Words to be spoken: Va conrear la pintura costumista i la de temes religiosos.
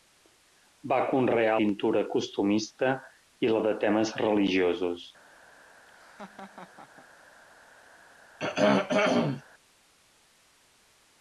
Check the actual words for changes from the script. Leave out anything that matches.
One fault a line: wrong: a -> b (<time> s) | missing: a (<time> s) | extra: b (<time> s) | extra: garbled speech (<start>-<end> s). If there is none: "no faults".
missing: la (1.6 s)